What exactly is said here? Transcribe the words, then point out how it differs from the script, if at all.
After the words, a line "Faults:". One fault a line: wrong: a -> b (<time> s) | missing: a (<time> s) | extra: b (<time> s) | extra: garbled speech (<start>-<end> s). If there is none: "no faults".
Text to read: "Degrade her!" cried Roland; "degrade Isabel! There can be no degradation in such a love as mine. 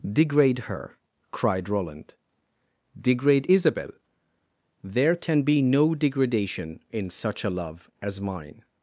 "Degrade her!" cried Roland; "degrade Isabel! There can be no degradation in such a love as mine.
Faults:
no faults